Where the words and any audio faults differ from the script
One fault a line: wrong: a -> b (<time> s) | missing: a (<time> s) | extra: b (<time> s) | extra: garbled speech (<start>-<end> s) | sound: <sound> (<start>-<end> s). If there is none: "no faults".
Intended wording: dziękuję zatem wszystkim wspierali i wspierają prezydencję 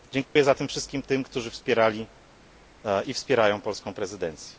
sound: dropout (0.3-0.4 s)
extra: tym którzy (1.0 s)
extra: polską (3.6 s)